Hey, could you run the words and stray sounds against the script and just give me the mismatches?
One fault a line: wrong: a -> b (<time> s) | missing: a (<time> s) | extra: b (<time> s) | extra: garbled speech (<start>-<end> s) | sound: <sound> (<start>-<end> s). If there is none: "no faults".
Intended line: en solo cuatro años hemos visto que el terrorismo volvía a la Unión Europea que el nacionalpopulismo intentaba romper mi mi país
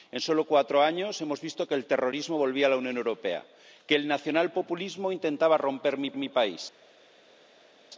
no faults